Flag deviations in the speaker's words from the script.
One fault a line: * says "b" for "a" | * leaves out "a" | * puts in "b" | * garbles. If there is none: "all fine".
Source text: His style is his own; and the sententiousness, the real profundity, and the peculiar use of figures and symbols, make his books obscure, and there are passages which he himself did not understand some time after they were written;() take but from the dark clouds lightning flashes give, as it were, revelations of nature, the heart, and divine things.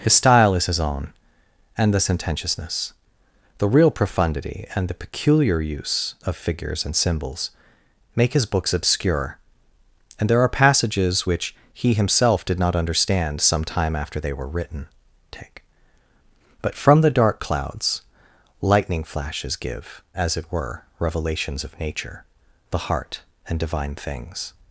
all fine